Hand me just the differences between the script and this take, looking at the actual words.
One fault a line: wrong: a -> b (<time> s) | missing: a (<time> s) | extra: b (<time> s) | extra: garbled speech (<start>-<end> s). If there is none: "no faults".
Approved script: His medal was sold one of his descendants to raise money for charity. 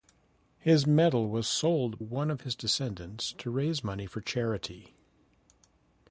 no faults